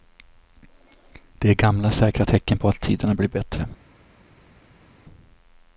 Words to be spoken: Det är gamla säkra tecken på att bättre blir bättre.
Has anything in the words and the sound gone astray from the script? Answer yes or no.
yes